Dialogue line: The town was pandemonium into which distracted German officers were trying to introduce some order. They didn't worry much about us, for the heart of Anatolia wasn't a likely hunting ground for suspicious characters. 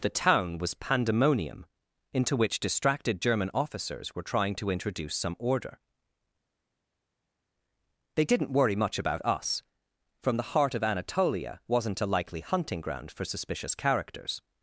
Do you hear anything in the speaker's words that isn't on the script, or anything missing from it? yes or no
yes